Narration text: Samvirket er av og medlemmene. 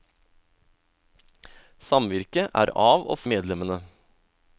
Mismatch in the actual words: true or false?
false